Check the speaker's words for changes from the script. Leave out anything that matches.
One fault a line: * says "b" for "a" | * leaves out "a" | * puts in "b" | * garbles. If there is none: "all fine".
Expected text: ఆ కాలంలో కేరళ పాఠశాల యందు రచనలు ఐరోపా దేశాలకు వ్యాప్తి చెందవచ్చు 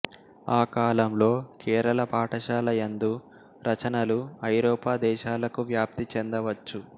all fine